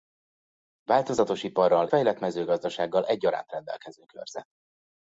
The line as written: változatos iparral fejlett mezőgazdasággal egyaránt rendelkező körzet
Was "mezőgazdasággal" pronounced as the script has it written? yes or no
yes